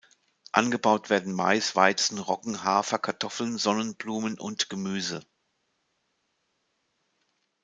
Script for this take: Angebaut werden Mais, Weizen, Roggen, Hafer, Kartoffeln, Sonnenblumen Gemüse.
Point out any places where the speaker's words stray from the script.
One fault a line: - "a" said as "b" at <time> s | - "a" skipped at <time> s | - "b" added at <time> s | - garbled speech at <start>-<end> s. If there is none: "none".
- "und" added at 4.4 s